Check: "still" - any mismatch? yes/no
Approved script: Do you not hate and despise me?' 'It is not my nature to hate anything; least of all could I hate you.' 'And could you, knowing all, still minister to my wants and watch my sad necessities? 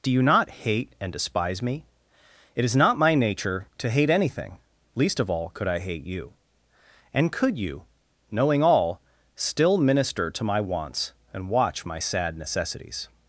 no